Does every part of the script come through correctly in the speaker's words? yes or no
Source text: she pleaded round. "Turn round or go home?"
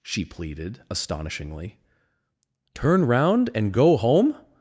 no